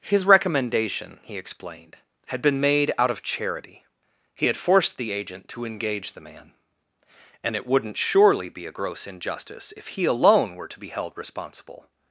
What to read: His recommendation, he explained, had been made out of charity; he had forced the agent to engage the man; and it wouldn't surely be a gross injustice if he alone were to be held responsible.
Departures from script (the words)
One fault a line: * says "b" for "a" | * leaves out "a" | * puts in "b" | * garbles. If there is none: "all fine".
all fine